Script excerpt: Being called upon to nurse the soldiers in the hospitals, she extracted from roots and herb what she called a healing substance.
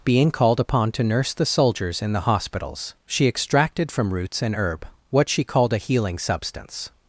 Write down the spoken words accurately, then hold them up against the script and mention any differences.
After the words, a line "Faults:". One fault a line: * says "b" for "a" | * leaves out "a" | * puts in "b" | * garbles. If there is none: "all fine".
Being called upon to nurse the soldiers in the hospitals, she extracted from roots and herb what she called a healing substance.
Faults:
all fine